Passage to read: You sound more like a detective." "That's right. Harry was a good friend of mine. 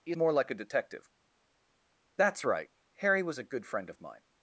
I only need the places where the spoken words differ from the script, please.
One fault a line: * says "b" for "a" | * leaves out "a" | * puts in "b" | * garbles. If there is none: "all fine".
* leaves out "sound"